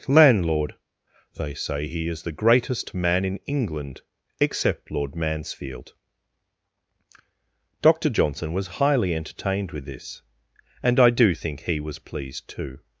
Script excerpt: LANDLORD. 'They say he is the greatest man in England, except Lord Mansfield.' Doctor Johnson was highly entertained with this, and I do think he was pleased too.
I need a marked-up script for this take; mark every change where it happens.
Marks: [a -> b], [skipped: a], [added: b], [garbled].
LANDLORD. 'They say he is the greatest man in England, except Lord Mansfield.' Doctor Johnson was highly entertained with this, and I do think he was pleased too.